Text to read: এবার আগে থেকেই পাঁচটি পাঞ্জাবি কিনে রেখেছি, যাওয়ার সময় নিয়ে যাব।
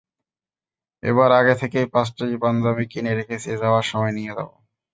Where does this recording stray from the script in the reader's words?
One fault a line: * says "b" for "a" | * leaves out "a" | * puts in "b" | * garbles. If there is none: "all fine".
all fine